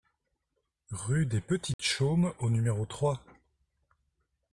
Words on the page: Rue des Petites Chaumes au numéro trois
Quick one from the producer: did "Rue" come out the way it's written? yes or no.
yes